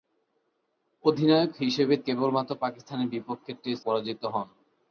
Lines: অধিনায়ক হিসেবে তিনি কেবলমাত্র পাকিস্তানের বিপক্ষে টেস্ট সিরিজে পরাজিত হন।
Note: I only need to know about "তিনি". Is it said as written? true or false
false